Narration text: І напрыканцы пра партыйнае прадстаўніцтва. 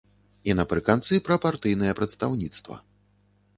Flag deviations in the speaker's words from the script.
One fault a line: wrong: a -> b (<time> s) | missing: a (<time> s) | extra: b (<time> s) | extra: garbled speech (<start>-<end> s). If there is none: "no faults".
no faults